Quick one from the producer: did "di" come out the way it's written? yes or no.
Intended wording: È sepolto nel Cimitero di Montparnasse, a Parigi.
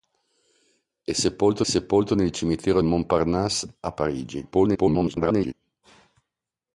no